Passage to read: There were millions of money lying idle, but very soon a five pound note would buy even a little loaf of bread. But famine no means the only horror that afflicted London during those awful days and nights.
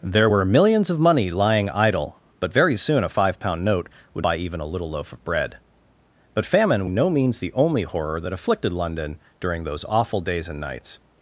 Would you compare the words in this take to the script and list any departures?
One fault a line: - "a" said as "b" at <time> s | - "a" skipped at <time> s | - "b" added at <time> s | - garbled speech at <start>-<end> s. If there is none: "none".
none